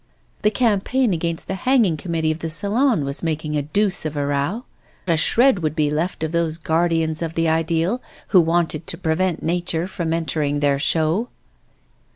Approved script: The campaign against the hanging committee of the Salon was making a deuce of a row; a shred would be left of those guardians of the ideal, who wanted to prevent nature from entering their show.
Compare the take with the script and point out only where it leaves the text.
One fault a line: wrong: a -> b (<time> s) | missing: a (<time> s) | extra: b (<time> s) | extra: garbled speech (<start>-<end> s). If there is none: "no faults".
no faults